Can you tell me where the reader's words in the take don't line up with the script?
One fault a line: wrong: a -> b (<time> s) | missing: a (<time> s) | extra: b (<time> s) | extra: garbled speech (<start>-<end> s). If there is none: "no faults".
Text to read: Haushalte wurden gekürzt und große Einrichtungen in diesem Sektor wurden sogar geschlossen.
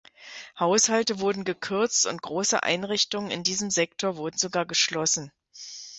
no faults